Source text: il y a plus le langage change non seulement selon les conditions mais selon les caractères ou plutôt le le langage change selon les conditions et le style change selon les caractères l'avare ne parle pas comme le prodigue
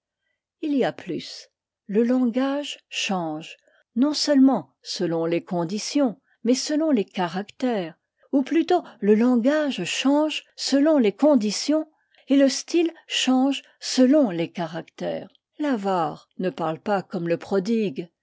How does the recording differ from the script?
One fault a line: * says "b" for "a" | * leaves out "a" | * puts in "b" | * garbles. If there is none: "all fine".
* leaves out "le"